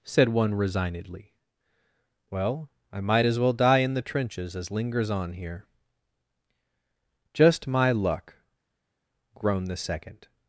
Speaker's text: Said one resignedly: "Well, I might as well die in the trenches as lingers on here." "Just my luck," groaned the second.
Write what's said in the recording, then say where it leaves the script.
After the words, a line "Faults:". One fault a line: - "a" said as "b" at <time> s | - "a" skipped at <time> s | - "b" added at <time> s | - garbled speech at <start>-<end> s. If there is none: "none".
Said one resignedly: "Well, I might as well die in the trenches as lingers on here." "Just my luck," groaned the second.
Faults:
none